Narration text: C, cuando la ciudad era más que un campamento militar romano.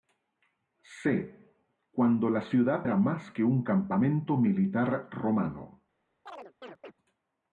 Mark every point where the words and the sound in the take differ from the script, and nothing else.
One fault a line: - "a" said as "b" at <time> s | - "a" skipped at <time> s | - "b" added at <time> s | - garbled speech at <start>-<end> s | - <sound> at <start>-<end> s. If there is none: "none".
- chirp at 6.3-6.9 s